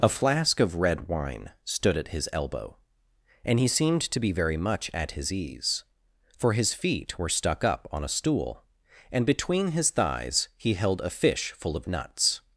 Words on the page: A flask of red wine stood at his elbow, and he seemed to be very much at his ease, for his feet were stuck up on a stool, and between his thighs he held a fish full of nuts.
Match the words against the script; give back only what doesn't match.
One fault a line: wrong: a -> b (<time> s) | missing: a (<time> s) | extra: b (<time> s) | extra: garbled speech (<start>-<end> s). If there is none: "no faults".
no faults